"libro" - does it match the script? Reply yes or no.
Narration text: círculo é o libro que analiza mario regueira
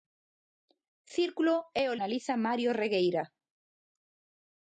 no